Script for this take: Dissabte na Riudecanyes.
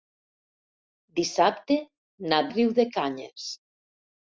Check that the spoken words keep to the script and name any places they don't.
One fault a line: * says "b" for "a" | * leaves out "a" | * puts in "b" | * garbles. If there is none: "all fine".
all fine